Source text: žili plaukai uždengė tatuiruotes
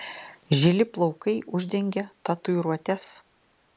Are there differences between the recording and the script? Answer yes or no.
no